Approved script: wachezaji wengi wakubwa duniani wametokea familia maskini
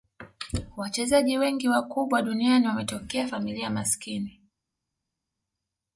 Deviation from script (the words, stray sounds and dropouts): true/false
false